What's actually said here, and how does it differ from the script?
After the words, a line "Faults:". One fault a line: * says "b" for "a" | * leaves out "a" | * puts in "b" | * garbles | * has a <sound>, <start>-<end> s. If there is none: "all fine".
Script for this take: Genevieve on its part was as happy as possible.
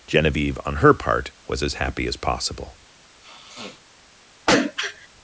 Genevieve on her part was as happy as possible.
Faults:
* says "her" for "its"
* has a sniff, 3.2-3.8 s
* has a throat clearing, 4.5-5.1 s